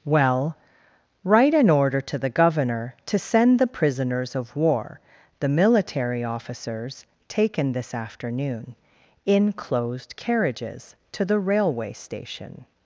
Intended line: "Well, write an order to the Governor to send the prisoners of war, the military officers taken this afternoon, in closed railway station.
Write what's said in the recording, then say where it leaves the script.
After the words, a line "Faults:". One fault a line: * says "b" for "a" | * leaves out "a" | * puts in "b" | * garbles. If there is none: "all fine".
"Well, write an order to the Governor to send the prisoners of war, the military officers taken this afternoon, in closed carriages to the railway station.
Faults:
* puts in "carriages to the"